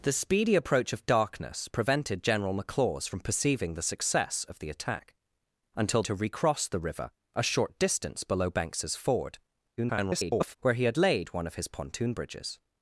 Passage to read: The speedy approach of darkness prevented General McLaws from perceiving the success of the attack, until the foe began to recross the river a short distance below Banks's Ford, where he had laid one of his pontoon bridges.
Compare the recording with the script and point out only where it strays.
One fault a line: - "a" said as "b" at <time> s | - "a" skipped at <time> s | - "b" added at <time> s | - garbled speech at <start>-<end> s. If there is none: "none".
- "the foe began" skipped at 6.0 s
- garbled speech at 9.8-10.5 s